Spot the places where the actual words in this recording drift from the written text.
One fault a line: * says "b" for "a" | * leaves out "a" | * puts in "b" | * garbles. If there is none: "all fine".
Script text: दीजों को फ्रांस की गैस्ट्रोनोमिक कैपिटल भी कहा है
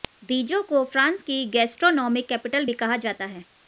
* puts in "जाता"